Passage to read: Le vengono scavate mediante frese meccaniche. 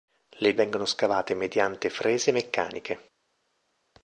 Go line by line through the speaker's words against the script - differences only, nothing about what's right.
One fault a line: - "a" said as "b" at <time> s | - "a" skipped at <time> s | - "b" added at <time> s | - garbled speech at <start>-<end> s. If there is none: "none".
none